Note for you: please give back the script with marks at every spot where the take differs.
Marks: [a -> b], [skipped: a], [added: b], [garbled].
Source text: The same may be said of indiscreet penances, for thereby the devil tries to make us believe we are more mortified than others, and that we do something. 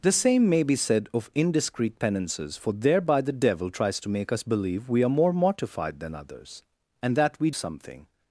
The same may be said of indiscreet penances, for thereby the devil tries to make us believe we are more mortified than others, and that we [skipped: do] something.